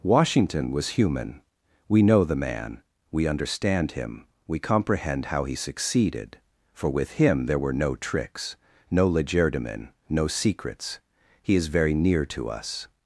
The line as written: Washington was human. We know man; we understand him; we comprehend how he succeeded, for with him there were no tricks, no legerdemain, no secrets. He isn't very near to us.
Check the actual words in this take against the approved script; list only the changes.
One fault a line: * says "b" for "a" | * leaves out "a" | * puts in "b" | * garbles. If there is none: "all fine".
* puts in "the"
* says "is" for "isn't"